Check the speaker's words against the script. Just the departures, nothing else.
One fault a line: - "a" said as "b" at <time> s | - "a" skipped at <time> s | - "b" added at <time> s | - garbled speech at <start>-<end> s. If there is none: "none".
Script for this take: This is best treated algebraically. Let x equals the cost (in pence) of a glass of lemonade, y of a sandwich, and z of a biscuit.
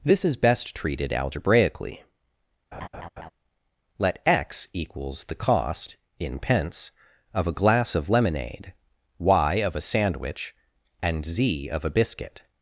none